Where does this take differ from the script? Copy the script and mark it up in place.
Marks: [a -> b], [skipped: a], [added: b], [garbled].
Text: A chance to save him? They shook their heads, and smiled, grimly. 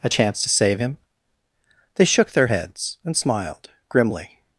A chance to save him? They shook their heads, and smiled, grimly.